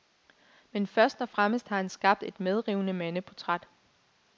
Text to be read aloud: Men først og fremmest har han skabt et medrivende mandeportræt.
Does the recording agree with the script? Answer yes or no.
yes